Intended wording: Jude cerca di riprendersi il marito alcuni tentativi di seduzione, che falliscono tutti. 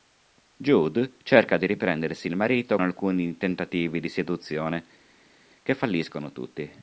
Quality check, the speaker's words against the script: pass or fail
pass